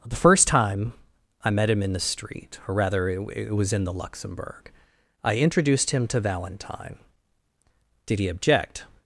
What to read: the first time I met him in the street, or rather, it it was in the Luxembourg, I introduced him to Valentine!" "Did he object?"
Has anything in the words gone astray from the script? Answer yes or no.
no